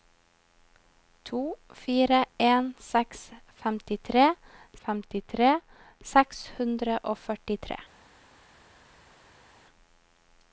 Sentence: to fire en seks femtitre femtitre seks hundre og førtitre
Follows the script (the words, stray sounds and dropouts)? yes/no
yes